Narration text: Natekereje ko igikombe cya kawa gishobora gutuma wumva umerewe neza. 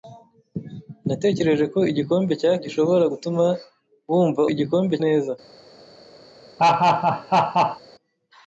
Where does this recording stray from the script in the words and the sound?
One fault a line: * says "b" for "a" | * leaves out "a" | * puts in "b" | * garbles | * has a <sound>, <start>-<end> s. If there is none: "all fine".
* leaves out "kawa"
* says "igikombe" for "umerewe"
* has a laugh, 6.6-7.8 s